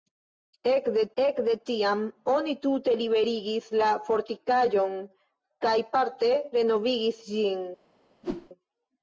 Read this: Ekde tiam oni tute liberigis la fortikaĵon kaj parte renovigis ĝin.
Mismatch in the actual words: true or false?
true